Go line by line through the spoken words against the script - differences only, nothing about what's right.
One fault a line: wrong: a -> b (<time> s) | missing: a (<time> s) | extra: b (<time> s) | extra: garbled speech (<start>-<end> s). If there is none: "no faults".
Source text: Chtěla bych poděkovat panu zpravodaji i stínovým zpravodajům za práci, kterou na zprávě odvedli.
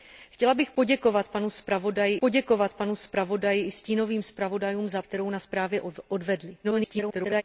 extra: poděkovat panu zpravodaji (2.2 s)
missing: práci (5.0 s)
extra: garbled speech (6.6-7.4 s)